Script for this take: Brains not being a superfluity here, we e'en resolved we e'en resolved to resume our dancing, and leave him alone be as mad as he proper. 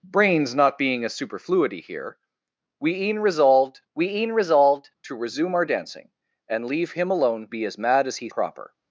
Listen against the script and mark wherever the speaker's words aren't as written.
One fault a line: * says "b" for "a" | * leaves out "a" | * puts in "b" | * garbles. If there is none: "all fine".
all fine